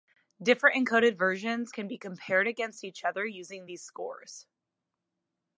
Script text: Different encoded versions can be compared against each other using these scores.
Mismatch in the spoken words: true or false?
false